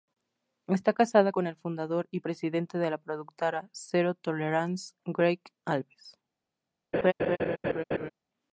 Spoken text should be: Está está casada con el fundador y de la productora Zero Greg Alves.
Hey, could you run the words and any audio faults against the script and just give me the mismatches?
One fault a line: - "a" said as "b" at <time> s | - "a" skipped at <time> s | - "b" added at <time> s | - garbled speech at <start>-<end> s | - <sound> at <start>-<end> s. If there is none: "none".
- "está" skipped at 0.9 s
- "presidente" added at 2.2 s
- "Tolerance" added at 4.1 s
- laugh at 6.9-8.1 s